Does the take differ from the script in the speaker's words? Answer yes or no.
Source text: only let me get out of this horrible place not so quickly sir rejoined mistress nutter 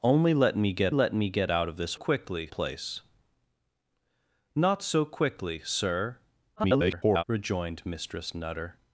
yes